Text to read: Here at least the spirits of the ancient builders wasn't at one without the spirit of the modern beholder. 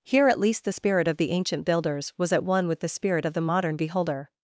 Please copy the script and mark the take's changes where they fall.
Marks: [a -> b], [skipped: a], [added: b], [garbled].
Here at least the [spirits -> spirit] of the ancient builders [wasn't -> was] at one [without -> with] the spirit of the modern beholder.